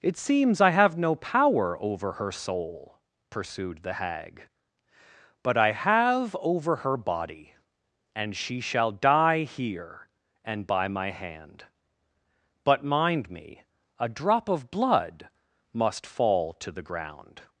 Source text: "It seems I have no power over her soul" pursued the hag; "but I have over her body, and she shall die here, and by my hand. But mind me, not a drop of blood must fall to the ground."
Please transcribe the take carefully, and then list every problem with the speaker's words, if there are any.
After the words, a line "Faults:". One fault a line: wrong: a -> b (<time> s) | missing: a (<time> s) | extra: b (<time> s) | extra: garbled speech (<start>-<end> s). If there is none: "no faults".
"It seems I have no power over her soul" pursued the hag; "but I have over her body, and she shall die here, and by my hand. But mind me, a drop of blood must fall to the ground."
Faults:
missing: not (13.6 s)